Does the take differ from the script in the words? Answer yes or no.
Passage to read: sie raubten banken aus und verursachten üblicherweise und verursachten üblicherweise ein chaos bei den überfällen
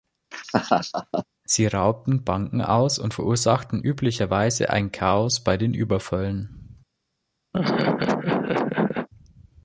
yes